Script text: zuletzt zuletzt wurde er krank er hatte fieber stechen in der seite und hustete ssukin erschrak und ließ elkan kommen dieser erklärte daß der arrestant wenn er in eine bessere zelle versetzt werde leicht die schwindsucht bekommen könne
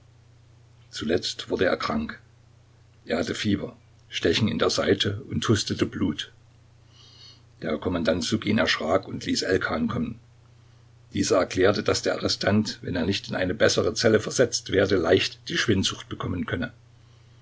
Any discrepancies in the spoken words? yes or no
yes